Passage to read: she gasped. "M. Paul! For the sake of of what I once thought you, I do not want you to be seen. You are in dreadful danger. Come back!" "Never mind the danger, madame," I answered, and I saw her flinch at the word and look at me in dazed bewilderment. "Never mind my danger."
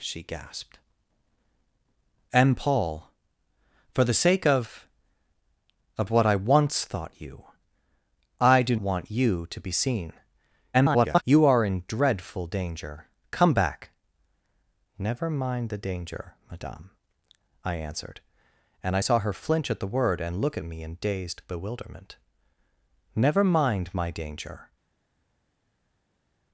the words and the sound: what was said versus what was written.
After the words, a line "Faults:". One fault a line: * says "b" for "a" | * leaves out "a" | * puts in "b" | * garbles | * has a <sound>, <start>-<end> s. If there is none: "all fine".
she gasped. "M. Paul! For the sake of of what I once thought you, I do want you to be seen. [garbled] You are in dreadful danger. Come back!" "Never mind the danger, madame," I answered, and I saw her flinch at the word and look at me in dazed bewilderment. "Never mind my danger."
Faults:
* leaves out "not"
* garbles